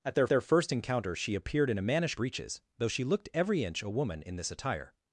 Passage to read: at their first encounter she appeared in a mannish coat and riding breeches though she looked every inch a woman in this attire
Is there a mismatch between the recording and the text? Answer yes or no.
yes